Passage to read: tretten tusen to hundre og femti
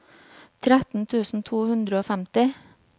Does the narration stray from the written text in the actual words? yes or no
no